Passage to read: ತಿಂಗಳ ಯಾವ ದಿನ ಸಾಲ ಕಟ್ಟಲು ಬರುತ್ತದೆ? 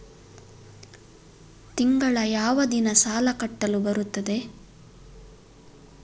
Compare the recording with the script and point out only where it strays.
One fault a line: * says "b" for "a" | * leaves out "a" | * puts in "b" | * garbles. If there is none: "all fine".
all fine